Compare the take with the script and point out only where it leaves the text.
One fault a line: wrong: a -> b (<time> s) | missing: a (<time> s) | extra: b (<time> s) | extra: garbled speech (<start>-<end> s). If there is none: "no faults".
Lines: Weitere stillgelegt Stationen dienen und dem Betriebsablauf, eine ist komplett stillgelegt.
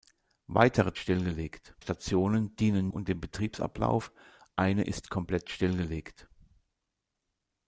no faults